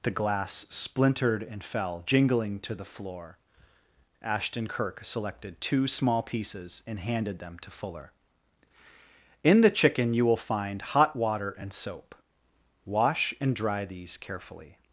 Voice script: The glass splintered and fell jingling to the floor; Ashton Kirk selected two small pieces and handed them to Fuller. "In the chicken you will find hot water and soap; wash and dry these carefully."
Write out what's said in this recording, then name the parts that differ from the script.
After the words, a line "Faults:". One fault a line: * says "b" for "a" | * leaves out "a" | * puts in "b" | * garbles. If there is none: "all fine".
The glass splintered and fell jingling to the floor; Ashton Kirk selected two small pieces and handed them to Fuller. "In the chicken you will find hot water and soap; wash and dry these carefully."
Faults:
all fine